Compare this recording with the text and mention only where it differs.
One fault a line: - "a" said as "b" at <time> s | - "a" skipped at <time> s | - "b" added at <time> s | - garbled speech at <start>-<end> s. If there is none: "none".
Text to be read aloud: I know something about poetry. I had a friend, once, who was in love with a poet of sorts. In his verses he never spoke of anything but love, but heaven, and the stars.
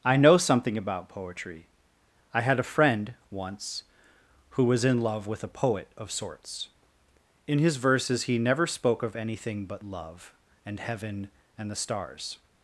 - "but" said as "and" at 10.7 s